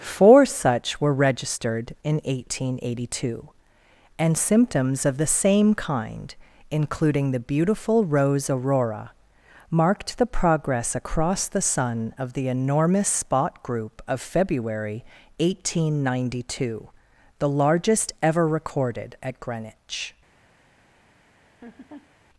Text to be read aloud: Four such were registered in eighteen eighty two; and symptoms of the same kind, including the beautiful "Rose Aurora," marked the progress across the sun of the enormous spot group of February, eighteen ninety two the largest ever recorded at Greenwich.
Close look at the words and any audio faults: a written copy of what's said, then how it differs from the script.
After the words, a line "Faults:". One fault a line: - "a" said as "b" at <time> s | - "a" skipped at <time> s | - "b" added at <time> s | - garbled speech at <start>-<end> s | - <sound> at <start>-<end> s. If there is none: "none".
Four such were registered in eighteen eighty two; and symptoms of the same kind, including the beautiful "Rose Aurora," marked the progress across the sun of the enormous spot group of February, eighteen ninety two the largest ever recorded at Greenwich.
Faults:
- laugh at 21.4-22.1 s